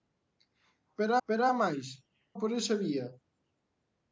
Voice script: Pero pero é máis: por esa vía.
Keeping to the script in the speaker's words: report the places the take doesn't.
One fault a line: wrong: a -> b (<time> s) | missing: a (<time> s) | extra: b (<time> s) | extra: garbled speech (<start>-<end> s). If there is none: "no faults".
no faults